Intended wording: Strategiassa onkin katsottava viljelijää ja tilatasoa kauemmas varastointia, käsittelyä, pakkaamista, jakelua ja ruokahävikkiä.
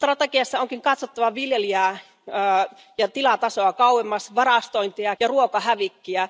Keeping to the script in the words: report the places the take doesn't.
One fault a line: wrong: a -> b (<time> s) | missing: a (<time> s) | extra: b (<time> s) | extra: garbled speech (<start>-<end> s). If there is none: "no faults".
missing: käsittelyä pakkaamista jakelua (5.2 s)